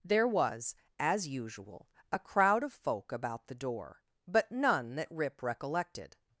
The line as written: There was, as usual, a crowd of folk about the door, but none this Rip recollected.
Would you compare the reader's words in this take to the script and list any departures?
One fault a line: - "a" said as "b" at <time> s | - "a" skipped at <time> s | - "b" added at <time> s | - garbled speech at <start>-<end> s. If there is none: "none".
- "this" said as "that" at 5.0 s